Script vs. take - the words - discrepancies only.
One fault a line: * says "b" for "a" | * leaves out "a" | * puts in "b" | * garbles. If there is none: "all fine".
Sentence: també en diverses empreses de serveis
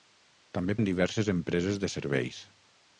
all fine